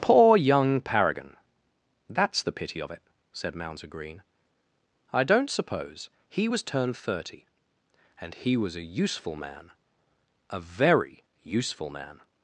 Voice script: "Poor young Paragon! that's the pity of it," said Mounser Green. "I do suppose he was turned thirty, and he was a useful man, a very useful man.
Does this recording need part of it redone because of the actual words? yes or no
yes